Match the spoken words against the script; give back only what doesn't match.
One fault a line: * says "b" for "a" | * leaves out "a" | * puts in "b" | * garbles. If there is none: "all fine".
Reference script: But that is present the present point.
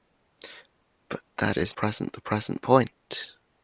all fine